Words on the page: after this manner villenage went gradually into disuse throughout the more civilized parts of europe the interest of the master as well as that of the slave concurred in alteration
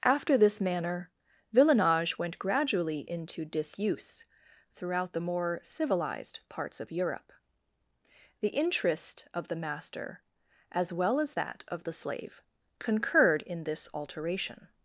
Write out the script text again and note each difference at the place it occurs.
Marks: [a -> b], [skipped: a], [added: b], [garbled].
after this manner villenage went gradually into disuse throughout the more civilized parts of europe the interest of the master as well as that of the slave concurred in [added: this] alteration